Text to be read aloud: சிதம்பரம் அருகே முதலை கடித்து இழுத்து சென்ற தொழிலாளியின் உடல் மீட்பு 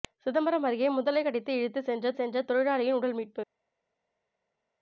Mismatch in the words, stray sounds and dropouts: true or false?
true